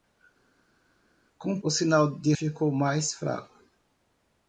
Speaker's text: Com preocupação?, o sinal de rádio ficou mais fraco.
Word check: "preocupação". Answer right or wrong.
wrong